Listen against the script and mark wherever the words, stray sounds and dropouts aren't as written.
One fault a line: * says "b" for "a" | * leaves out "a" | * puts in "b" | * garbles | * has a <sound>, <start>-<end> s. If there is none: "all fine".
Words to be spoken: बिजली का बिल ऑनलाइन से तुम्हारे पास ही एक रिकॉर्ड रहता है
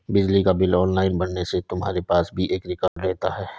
* puts in "भरने"
* says "भी" for "ही"
* has a dropout, 2.9-3.0 s